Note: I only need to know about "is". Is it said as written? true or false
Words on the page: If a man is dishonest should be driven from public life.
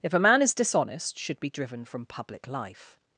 true